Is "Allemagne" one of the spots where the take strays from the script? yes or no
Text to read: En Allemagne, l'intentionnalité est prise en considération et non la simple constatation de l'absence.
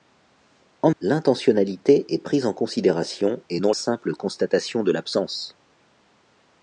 yes